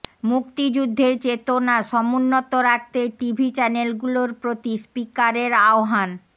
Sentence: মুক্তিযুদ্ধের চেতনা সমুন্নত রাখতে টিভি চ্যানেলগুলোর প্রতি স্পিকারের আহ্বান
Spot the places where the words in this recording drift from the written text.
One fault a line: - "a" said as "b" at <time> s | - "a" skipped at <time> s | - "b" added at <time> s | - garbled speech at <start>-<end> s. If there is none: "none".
none